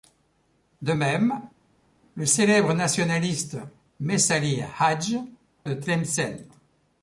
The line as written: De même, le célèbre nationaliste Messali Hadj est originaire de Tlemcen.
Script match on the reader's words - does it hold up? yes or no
no